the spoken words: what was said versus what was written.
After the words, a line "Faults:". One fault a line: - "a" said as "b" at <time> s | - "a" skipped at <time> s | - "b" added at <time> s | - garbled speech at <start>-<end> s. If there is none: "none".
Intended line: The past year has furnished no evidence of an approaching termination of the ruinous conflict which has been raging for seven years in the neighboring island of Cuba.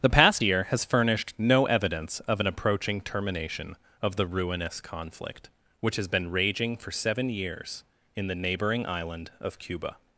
The past year has furnished no evidence of an approaching termination of the ruinous conflict which has been raging for seven years in the neighboring island of Cuba.
Faults:
none